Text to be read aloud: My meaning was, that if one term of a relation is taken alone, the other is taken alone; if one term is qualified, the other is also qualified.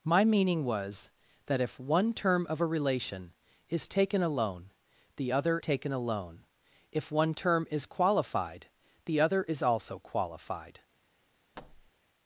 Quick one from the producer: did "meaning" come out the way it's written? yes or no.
yes